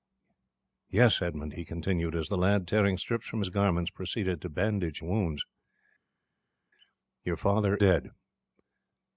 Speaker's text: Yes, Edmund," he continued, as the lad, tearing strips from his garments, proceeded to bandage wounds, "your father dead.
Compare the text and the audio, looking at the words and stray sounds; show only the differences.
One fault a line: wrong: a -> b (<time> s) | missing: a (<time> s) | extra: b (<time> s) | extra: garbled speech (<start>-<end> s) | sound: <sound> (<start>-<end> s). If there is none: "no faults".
no faults